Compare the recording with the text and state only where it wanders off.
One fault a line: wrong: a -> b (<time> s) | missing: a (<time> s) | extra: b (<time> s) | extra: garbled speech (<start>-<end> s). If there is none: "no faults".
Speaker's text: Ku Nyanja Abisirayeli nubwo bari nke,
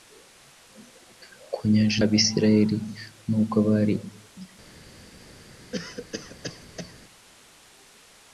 no faults